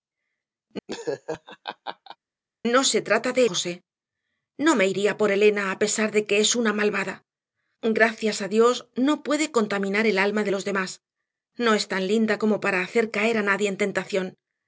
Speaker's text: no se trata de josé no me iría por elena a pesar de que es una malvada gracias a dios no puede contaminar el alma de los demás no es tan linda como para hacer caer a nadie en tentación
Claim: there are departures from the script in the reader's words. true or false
false